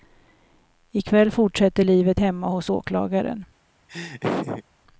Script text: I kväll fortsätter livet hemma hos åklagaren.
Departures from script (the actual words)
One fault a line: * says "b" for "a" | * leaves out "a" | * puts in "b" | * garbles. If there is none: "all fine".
all fine